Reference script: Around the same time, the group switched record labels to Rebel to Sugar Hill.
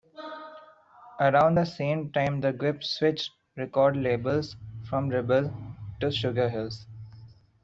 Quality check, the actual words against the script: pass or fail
fail